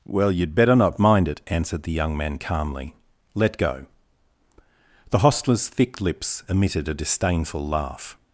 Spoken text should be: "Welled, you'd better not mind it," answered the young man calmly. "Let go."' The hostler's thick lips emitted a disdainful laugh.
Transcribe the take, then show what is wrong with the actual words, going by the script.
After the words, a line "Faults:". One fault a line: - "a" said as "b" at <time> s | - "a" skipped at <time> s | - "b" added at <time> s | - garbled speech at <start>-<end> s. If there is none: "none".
"Well, you'd better not mind it," answered the young man calmly. "Let go."' The hostler's thick lips emitted a disdainful laugh.
Faults:
- "Welled" said as "Well" at 0.1 s